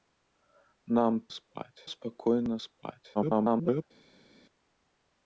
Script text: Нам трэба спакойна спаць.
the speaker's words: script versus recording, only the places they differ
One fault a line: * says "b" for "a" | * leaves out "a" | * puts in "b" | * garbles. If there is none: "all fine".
* says "спаць" for "трэба"
* garbles